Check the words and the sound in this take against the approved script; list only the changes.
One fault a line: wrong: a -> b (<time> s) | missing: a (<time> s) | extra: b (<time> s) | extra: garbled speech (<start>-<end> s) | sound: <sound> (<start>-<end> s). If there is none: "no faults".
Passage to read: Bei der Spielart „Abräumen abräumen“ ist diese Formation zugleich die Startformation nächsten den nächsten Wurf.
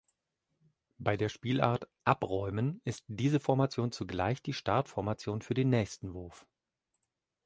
missing: abräumen (2.8 s)
wrong: nächsten -> für (5.4 s)